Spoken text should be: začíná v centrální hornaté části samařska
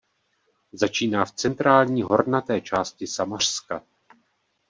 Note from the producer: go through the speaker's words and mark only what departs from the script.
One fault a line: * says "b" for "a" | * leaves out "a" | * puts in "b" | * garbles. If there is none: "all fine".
all fine